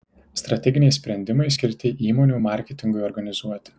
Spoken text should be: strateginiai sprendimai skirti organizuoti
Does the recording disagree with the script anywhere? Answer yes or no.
yes